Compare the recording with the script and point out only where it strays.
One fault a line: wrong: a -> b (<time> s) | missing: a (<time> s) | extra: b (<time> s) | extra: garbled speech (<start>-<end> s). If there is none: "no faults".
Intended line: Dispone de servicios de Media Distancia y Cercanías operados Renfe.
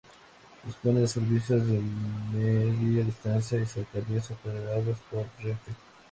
extra: por (5.1 s)